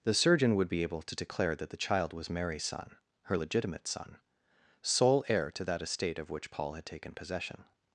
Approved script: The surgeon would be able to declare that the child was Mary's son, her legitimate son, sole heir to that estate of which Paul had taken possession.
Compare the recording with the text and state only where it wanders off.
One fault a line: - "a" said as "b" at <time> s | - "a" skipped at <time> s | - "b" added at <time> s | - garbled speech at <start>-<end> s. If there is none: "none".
none